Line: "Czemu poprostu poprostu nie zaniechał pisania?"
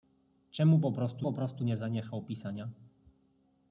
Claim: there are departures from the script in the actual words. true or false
false